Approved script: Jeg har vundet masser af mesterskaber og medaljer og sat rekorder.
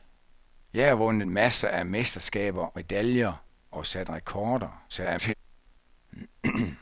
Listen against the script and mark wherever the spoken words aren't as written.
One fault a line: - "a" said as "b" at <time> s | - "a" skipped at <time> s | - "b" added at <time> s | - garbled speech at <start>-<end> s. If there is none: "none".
- "og" skipped at 2.8 s
- garbled speech at 4.9-5.3 s